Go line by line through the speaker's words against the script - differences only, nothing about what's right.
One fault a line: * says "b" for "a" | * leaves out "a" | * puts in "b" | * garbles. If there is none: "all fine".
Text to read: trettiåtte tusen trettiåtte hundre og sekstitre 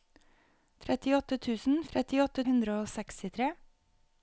all fine